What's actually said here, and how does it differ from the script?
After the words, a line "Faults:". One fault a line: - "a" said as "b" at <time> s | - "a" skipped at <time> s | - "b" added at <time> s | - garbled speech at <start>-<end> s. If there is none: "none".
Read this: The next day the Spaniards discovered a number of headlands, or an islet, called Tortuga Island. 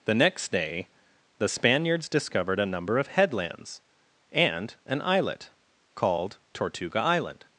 The next day the Spaniards discovered a number of headlands, and an islet, called Tortuga Island.
Faults:
- "or" said as "and" at 4.3 s